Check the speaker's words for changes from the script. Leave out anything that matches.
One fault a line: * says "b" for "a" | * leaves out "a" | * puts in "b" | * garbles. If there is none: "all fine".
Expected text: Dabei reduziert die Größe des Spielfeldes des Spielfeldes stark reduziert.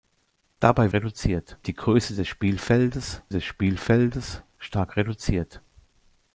all fine